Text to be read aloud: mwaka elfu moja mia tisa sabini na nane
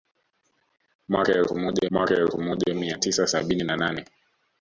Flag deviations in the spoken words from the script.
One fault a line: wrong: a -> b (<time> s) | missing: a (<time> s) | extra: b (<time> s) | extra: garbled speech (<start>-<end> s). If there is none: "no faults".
extra: mwaka elfu moja (1.9 s)